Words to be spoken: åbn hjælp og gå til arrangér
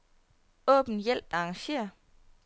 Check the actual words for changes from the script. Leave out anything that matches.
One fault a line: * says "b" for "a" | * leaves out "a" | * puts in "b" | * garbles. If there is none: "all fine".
* leaves out "og gå til"